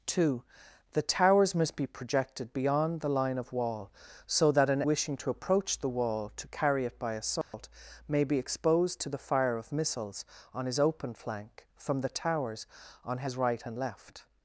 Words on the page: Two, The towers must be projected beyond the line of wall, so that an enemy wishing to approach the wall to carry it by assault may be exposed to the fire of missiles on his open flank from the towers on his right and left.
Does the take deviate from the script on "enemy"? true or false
true